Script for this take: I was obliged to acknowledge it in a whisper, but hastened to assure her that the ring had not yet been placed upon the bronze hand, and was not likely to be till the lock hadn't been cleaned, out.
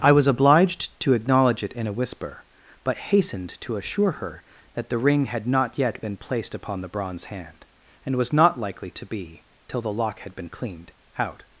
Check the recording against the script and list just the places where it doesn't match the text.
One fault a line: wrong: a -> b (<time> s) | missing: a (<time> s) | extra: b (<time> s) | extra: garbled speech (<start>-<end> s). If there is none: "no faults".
wrong: hadn't -> had (10.2 s)